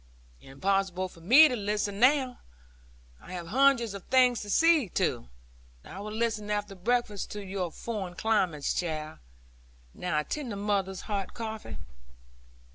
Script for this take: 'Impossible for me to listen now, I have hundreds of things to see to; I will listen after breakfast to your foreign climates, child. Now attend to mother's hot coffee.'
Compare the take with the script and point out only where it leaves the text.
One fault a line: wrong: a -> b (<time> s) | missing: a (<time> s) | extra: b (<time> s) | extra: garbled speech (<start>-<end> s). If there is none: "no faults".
no faults